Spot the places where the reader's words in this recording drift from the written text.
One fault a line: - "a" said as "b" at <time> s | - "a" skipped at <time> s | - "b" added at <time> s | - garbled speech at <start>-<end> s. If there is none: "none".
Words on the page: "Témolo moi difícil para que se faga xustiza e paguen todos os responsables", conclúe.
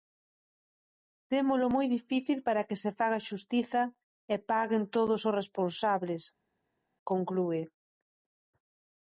none